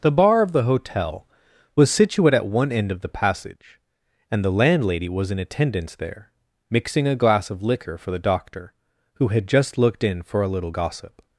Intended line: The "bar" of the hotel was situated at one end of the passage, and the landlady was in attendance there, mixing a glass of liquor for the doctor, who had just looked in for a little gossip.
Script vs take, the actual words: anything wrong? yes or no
yes